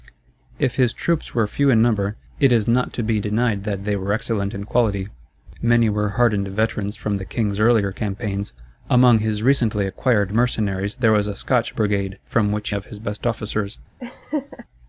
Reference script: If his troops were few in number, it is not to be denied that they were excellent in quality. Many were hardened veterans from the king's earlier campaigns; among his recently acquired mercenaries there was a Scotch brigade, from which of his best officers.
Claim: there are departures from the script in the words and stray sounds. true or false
true